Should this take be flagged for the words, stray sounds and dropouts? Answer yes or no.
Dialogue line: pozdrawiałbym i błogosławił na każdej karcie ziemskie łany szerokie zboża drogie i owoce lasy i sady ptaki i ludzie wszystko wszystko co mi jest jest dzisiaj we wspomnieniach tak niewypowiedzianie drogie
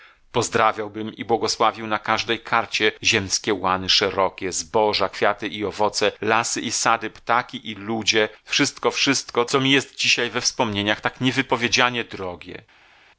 yes